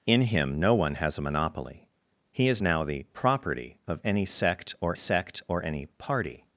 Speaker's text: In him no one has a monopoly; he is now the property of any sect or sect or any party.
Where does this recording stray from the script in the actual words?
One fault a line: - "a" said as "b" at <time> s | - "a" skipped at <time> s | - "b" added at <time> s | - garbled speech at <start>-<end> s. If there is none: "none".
none